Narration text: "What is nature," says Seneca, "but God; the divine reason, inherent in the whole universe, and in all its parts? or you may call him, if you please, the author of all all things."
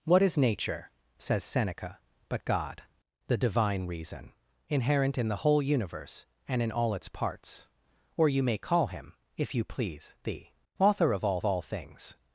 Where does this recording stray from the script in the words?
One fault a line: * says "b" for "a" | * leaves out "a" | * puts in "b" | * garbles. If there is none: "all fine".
all fine